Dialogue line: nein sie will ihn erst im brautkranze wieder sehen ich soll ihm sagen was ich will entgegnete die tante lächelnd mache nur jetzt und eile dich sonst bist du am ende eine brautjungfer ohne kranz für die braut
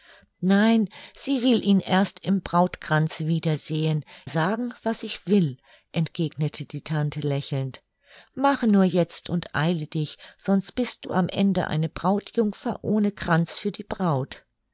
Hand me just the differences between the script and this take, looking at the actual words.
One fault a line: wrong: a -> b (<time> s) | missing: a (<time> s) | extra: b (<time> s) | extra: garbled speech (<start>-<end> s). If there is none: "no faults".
missing: ich soll ihm (4.0 s)